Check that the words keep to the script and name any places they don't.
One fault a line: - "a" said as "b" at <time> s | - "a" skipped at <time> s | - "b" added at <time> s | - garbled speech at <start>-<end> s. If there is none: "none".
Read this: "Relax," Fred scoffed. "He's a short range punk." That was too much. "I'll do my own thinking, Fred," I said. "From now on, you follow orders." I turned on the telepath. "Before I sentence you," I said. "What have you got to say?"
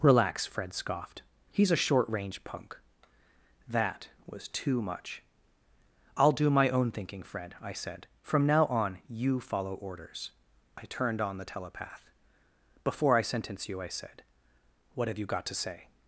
none